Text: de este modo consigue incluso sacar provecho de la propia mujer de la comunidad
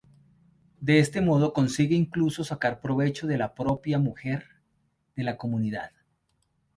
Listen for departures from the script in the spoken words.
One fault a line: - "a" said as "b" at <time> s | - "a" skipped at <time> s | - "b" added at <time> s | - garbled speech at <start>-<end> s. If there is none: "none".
none